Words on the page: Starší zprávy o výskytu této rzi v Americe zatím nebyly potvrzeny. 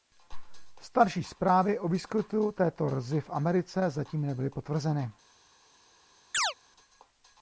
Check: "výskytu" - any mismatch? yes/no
no